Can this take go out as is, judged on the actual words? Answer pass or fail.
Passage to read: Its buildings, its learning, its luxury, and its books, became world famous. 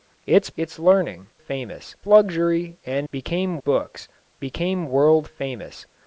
fail